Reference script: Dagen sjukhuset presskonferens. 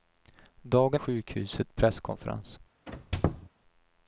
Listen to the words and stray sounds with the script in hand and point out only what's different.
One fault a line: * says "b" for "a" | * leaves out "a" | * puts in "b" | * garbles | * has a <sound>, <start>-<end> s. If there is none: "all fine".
* has a squeak, 2.9-3.5 s